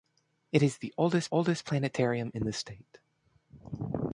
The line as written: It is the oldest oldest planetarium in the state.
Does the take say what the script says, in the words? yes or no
yes